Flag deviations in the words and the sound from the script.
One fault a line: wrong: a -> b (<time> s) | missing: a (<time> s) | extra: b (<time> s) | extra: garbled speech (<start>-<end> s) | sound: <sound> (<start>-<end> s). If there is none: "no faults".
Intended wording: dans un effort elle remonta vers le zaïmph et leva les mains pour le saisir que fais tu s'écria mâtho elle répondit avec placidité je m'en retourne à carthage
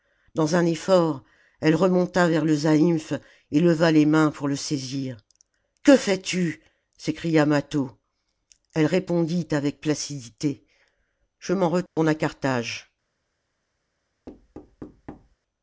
sound: dropout (11.9-12.0 s)
sound: thud (14.3-15.4 s)